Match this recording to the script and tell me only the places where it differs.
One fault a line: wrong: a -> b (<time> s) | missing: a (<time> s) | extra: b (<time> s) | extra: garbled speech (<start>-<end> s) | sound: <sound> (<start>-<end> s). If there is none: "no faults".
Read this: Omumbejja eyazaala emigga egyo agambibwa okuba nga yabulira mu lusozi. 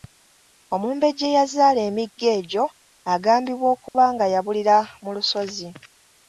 sound: dropout (3.9-3.9 s)